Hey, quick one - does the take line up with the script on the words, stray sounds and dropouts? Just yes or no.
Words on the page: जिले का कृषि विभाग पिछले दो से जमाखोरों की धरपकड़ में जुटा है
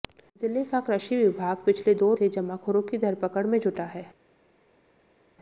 yes